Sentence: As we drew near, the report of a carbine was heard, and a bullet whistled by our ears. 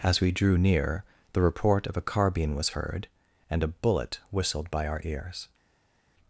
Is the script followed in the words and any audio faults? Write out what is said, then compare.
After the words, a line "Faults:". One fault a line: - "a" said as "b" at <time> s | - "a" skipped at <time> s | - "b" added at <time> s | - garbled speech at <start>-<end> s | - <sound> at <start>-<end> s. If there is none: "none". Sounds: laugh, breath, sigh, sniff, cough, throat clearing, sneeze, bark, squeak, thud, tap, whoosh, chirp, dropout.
As we drew near, the report of a carbine was heard, and a bullet whistled by our ears.
Faults:
none